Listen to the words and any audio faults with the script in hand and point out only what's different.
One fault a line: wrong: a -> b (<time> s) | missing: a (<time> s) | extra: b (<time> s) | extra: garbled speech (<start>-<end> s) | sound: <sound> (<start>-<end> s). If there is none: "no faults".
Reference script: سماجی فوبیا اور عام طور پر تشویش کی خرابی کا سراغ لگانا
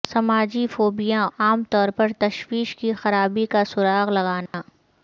missing: اور (1.2 s)
sound: dropout (4.5-4.5 s)